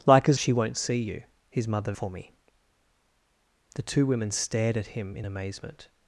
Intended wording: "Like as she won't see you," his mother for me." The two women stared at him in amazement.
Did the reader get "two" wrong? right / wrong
right